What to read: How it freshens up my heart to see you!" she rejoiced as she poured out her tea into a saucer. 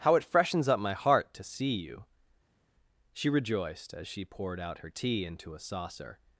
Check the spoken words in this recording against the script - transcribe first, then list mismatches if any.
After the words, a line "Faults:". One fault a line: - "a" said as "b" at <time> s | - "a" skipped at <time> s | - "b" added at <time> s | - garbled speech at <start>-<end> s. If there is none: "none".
How it freshens up my heart to see you!" she rejoiced as she poured out her tea into a saucer.
Faults:
none